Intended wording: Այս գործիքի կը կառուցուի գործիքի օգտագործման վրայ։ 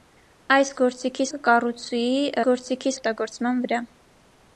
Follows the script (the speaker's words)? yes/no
yes